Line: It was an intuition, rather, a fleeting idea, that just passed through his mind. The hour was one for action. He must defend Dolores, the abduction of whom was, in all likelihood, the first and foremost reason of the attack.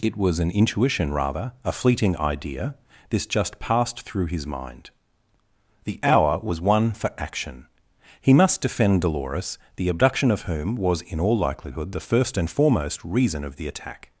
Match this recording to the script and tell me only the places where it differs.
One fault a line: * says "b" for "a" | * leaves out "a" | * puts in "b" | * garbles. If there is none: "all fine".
* says "this" for "that"